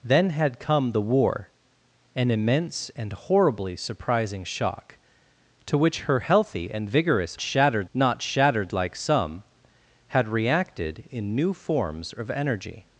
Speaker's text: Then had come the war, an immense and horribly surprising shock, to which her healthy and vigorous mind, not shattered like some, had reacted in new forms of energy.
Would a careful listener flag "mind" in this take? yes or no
yes